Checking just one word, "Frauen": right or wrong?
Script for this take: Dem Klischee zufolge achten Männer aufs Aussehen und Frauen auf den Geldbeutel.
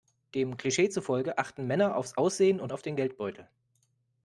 wrong